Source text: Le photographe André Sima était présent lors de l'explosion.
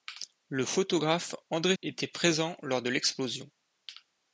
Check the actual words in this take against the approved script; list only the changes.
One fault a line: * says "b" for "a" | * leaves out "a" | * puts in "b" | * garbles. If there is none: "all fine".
* leaves out "Sima"